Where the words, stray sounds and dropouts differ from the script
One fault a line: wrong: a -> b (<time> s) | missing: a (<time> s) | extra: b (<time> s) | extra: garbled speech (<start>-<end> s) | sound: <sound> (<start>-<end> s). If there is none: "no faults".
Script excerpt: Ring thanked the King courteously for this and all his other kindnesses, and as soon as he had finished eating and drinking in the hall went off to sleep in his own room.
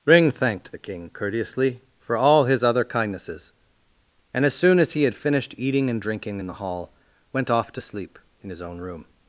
missing: this and (2.2 s)